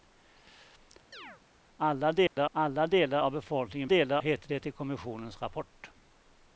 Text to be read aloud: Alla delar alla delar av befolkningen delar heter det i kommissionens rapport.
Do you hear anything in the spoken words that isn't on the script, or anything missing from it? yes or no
no